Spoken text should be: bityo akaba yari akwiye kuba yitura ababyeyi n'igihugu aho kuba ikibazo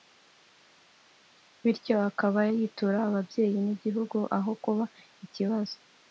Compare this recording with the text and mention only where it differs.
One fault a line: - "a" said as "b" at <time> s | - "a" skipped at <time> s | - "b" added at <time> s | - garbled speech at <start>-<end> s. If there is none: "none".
- "yari akwiye kuba" skipped at 2.4 s